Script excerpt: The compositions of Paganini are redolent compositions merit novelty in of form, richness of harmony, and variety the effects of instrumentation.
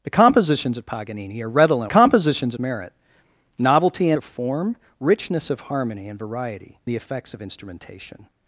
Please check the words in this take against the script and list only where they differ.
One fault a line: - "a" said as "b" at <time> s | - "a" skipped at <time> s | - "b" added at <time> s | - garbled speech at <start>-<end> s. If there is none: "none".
none